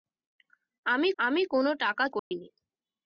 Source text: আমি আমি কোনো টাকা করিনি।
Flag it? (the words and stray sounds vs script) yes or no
yes